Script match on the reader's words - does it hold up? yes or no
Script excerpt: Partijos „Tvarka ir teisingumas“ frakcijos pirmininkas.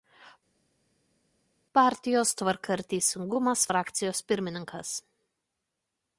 yes